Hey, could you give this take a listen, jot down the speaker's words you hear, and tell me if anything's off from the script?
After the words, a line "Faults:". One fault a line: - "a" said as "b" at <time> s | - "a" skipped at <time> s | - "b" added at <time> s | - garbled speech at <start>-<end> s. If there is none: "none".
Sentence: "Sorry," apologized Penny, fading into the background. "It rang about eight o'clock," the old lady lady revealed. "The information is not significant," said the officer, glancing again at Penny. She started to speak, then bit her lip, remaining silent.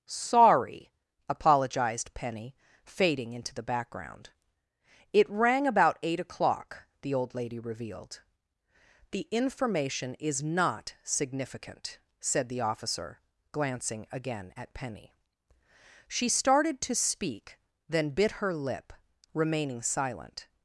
"Sorry," apologized Penny, fading into the background. "It rang about eight o'clock," the old lady revealed. "The information is not significant," said the officer, glancing again at Penny. She started to speak, then bit her lip, remaining silent.
Faults:
- "lady" skipped at 7.6 s